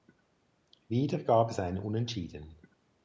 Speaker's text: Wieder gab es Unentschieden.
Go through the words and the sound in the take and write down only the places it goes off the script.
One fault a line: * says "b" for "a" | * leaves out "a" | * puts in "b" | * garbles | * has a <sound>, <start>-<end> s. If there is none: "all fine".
* puts in "ein"